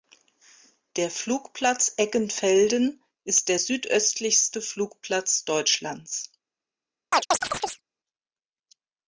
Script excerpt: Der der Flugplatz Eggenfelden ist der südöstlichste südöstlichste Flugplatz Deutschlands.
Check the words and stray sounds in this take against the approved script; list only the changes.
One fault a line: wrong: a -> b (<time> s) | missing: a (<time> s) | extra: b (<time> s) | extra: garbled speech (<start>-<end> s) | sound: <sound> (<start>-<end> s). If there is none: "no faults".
missing: der (1.1 s)
missing: südöstlichste (4.6 s)
sound: chirp (7.1-7.8 s)